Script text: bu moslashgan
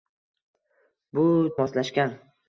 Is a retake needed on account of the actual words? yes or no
no